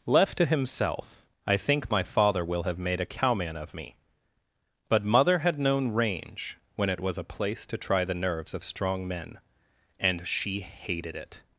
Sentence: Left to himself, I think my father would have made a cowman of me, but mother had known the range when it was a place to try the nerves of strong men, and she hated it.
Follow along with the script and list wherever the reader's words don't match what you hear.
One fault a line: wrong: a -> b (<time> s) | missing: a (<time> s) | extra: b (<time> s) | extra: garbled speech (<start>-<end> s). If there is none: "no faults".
wrong: would -> will (2.4 s)
missing: the (5.9 s)